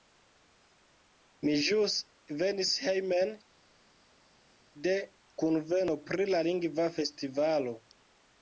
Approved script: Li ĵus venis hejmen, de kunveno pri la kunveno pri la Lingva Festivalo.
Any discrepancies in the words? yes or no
yes